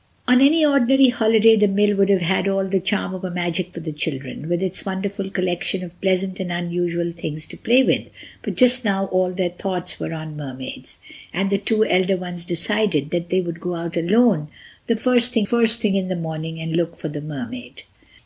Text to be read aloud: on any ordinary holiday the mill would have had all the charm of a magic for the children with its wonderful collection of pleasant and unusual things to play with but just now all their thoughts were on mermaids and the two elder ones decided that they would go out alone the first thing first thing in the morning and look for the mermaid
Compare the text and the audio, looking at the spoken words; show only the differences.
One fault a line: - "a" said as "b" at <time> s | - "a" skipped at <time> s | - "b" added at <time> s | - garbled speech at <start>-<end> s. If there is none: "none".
none